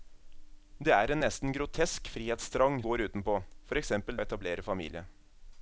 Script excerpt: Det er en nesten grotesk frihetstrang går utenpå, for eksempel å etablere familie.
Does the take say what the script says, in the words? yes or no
yes